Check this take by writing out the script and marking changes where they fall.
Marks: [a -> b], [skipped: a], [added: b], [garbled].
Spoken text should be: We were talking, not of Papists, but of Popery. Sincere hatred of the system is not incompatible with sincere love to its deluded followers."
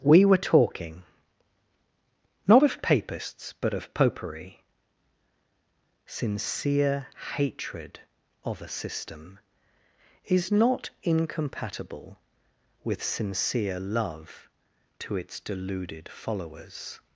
We were talking, not of Papists, but of Popery. Sincere hatred of [the -> a] system is not incompatible with sincere love to its deluded followers."